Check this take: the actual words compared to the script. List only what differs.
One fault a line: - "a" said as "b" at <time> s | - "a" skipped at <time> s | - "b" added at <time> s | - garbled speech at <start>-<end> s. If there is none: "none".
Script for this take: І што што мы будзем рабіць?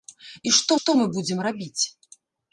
none